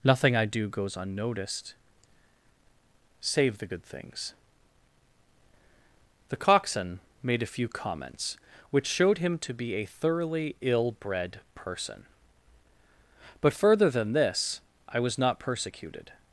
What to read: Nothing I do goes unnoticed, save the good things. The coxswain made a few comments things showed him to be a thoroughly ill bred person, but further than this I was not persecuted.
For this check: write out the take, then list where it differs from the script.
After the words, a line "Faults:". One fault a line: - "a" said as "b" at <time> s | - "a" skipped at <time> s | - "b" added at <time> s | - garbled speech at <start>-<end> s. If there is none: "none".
Nothing I do goes unnoticed, save the good things. The coxswain made a few comments which showed him to be a thoroughly ill bred person, but further than this I was not persecuted.
Faults:
- "things" said as "which" at 8.7 s